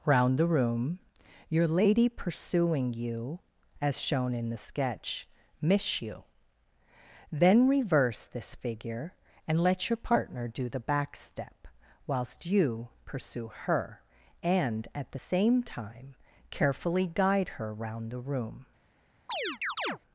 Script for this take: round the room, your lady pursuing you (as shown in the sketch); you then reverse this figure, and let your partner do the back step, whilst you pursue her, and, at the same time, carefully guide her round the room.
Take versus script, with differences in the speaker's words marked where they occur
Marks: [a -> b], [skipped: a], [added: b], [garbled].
round the room, your lady pursuing you (as shown in the sketch); [added: miss] you then reverse this figure, and let your partner do the back step, whilst you pursue her, and, at the same time, carefully guide her round the room.